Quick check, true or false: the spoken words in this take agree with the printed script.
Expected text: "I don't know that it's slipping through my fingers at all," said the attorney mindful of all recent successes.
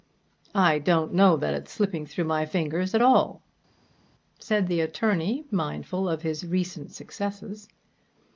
false